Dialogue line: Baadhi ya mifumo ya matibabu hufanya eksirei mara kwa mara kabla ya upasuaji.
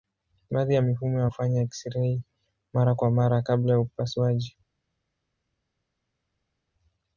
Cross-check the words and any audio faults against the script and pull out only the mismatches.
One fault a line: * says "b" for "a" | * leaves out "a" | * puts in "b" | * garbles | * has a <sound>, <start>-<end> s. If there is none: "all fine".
* leaves out "matibabu"